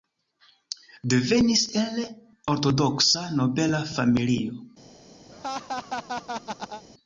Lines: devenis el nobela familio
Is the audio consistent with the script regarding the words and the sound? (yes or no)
no